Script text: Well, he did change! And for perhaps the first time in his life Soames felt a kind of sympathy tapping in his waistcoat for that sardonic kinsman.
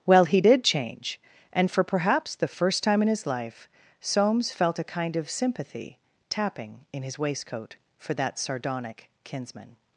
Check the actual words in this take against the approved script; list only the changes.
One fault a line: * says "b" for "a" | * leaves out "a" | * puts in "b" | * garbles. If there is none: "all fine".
all fine